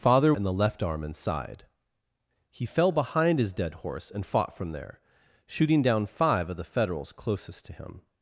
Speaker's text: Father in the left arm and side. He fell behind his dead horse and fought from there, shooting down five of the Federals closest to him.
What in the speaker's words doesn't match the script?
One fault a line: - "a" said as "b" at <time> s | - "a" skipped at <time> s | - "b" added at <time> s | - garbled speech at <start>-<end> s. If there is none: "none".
none